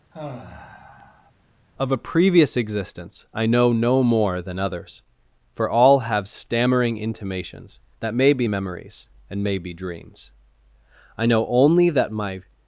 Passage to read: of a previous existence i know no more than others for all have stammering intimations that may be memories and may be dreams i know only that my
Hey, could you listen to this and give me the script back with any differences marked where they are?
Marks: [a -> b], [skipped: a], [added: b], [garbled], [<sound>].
[sigh] of a previous existence i know no more than others for all have stammering intimations that may be memories and may be dreams i know only that my